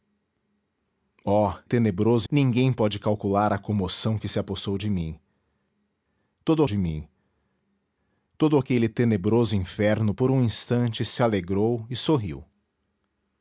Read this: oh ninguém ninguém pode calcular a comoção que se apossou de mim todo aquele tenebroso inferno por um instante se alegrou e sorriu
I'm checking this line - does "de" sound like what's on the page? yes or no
yes